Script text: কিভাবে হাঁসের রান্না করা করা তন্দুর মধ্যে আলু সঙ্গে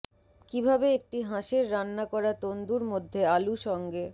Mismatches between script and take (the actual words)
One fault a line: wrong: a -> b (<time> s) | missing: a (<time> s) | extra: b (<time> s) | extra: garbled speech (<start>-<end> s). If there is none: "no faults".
extra: একটি (1.0 s)
missing: করা (2.3 s)